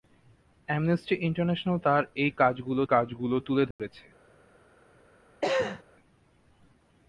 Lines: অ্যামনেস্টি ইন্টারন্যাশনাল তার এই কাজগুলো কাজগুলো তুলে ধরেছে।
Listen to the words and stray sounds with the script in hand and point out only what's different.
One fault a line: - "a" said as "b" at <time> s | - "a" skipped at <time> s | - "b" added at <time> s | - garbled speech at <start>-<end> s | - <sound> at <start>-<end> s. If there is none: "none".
- dropout at 3.7-3.8 s
- cough at 5.4-5.8 s